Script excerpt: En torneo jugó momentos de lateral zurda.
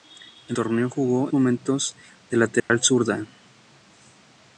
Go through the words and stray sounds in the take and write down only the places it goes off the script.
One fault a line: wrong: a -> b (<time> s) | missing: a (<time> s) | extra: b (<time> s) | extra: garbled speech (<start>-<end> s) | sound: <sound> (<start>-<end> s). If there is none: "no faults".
sound: dropout (2.6-2.7 s)